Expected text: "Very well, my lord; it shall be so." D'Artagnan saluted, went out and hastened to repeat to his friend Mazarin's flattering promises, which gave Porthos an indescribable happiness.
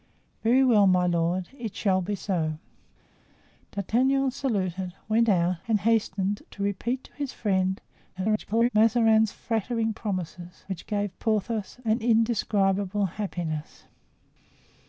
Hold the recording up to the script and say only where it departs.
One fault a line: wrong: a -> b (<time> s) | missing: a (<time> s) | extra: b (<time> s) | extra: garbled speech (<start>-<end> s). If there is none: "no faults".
extra: garbled speech (8.1-8.7 s)